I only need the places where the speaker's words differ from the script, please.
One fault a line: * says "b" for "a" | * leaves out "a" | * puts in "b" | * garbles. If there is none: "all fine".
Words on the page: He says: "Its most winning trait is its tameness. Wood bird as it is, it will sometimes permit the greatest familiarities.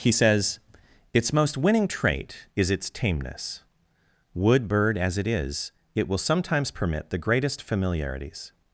all fine